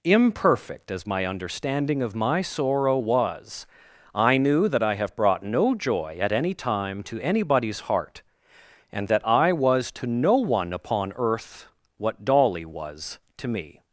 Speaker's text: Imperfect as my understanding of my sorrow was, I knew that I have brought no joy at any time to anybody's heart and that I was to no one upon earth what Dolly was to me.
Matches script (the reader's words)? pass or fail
pass